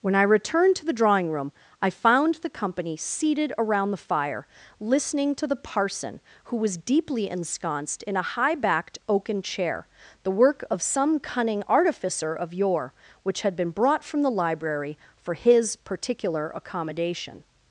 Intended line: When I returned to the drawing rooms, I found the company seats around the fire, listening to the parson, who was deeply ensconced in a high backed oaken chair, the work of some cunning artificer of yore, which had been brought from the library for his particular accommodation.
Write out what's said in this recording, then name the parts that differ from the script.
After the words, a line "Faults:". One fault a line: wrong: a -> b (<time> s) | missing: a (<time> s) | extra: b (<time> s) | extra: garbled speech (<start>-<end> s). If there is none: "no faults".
When I returned to the drawing room, I found the company seated around the fire, listening to the parson, who was deeply ensconced in a high backed oaken chair, the work of some cunning artificer of yore, which had been brought from the library for his particular accommodation.
Faults:
wrong: rooms -> room (1.3 s)
wrong: seats -> seated (3.0 s)